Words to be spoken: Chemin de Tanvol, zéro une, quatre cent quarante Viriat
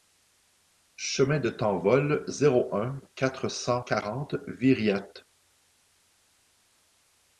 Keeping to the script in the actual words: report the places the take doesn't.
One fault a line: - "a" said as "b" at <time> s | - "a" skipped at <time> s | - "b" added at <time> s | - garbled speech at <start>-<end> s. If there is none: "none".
- "une" said as "un" at 2.8 s